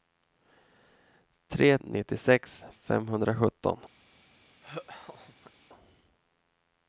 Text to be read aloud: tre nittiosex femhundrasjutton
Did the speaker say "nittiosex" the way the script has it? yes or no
yes